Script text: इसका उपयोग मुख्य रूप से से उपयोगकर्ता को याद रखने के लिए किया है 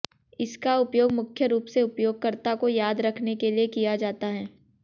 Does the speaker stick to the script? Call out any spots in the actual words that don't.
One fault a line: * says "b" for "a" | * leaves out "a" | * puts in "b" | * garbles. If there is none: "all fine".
* leaves out "से"
* puts in "जाता"